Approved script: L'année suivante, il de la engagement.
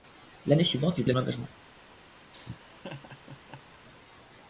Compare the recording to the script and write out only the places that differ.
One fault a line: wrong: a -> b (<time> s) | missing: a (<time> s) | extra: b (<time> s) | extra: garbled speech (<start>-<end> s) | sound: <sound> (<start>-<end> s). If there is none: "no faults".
sound: laugh (2.3-3.8 s)